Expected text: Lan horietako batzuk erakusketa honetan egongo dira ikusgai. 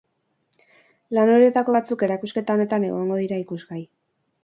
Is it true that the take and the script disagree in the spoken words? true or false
false